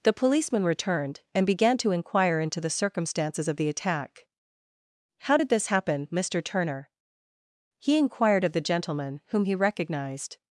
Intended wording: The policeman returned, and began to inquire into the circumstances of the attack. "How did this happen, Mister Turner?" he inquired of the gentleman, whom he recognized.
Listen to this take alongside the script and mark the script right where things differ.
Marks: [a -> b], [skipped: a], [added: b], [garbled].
The policeman returned, and began to inquire into the circumstances of the attack. "How did this happen, Mister Turner?" he inquired of the gentleman, whom he recognized.